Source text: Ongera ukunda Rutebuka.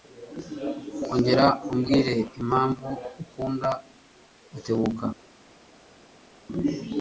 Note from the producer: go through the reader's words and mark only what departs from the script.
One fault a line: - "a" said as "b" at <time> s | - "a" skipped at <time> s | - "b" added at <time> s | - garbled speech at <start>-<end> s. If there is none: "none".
- "umbwire impamvu" added at 1.7 s